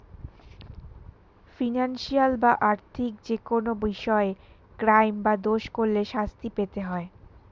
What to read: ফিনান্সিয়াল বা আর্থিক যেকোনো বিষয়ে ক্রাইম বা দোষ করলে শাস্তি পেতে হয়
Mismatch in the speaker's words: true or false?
false